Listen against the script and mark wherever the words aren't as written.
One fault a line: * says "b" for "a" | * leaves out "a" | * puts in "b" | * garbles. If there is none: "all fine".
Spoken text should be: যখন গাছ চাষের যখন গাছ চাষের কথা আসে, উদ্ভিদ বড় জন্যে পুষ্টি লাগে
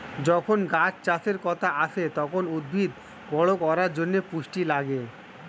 * leaves out "যখন গাছ চাষের"
* puts in "তখন"
* puts in "করার"